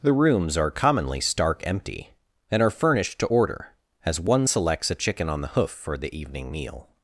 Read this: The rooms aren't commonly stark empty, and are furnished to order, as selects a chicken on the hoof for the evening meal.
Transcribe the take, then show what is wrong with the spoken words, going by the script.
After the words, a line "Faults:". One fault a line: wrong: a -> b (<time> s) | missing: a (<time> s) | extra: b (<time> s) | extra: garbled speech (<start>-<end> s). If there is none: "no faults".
The rooms are commonly stark empty, and are furnished to order, as one selects a chicken on the hoof for the evening meal.
Faults:
wrong: aren't -> are (0.6 s)
extra: one (4.2 s)